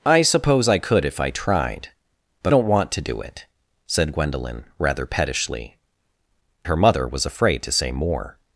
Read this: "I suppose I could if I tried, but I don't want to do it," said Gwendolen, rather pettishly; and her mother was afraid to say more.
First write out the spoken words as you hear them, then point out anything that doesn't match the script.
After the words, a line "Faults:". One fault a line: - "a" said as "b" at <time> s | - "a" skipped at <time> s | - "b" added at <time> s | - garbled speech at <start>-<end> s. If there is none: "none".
"I suppose I could if I tried, but don't want to do it," said Gwendolen, rather pettishly; her mother was afraid to say more.
Faults:
- "I" skipped at 2.5 s
- "and" skipped at 5.8 s